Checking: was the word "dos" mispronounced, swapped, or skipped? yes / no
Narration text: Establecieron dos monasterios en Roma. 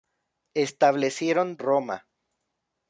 yes